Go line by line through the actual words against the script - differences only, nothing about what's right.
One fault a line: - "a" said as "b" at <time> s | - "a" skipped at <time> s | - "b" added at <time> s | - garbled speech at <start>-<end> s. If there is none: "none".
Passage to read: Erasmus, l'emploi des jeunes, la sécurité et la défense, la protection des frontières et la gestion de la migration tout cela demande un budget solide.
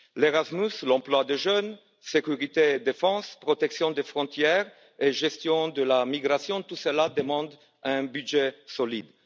none